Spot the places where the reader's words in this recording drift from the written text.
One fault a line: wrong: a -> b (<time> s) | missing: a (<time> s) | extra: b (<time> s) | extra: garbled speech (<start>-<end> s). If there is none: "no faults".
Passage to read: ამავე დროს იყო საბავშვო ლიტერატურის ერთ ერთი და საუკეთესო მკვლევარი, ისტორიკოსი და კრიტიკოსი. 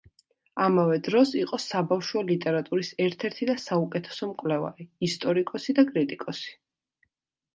no faults